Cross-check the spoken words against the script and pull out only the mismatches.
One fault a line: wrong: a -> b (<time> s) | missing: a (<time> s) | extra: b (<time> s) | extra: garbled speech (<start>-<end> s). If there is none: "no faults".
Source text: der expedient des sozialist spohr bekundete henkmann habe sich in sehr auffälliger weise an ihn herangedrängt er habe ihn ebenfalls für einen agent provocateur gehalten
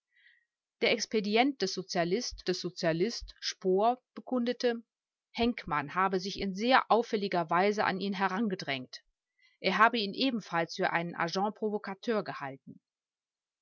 extra: des sozialist (2.5 s)